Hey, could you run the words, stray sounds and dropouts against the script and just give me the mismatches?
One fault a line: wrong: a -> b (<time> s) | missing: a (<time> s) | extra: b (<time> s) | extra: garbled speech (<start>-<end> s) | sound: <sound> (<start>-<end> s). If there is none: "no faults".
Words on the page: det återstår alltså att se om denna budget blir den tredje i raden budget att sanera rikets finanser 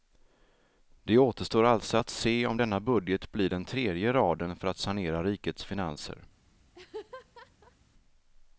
wrong: budget -> för (4.6 s)
sound: laugh (6.7-7.8 s)